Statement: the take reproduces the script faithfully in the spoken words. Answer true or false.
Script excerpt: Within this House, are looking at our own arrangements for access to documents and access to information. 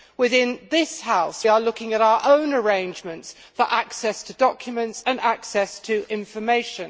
true